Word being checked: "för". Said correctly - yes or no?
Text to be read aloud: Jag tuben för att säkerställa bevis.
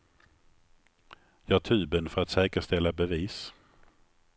yes